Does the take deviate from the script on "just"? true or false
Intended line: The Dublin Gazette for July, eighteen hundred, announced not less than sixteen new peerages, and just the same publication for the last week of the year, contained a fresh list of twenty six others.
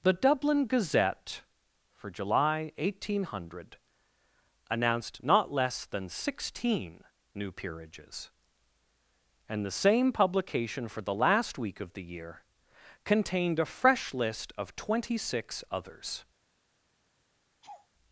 true